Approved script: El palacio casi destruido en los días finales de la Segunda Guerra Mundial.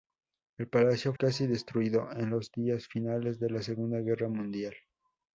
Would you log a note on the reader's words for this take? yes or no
no